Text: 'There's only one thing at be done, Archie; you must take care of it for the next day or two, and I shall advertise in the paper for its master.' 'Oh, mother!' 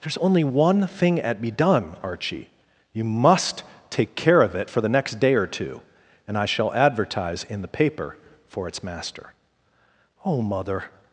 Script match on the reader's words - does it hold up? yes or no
yes